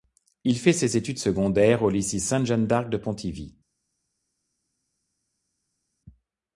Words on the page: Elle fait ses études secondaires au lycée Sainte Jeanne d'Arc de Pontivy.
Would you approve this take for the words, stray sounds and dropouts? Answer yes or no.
no